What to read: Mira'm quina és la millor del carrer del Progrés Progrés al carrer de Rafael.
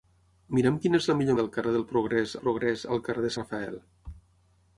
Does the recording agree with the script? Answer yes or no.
yes